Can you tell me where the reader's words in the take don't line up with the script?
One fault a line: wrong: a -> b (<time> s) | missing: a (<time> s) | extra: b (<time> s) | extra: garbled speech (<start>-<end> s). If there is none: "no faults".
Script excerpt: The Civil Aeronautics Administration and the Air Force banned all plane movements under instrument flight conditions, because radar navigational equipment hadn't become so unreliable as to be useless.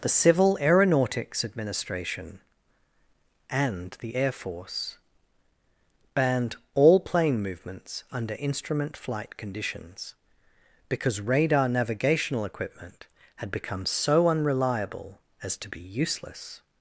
wrong: hadn't -> had (13.4 s)